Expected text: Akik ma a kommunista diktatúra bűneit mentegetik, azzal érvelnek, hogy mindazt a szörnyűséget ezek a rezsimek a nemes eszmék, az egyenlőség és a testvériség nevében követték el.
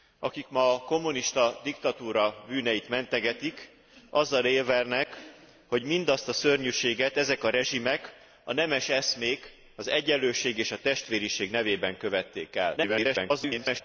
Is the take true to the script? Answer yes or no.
no